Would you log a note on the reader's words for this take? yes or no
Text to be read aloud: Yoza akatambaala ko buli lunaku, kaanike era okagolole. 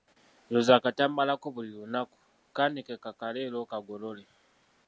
yes